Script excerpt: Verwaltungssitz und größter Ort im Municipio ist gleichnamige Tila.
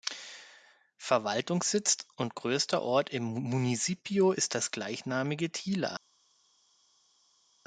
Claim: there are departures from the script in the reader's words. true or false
true